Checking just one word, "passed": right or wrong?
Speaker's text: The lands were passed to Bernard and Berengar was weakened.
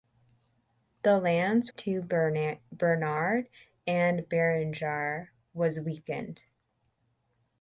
wrong